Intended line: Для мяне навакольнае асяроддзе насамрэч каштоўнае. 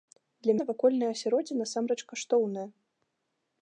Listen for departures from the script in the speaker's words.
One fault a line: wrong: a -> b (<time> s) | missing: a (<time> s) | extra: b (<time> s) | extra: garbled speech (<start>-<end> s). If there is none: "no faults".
missing: мяне (0.5 s)